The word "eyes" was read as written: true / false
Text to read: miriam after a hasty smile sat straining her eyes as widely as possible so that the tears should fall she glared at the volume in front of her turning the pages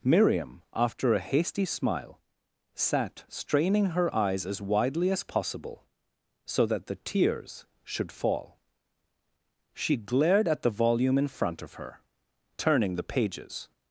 true